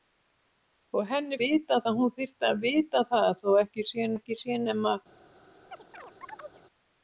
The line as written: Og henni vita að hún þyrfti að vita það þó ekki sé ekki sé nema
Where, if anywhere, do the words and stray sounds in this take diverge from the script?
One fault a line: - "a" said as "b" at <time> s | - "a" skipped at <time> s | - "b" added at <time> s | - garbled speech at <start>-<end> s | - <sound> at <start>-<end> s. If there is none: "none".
- chirp at 5.7-6.6 s